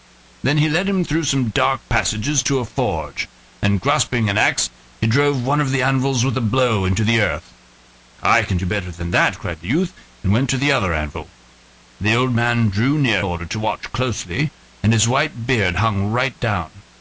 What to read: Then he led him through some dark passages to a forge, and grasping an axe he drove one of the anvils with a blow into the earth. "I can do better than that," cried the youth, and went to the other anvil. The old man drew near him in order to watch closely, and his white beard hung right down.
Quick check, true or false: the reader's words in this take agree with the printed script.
false